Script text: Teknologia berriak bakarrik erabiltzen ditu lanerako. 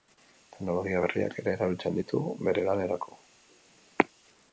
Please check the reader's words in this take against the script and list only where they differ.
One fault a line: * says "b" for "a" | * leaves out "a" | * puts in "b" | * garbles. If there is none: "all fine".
* says "ere" for "bakarrik"
* puts in "bere"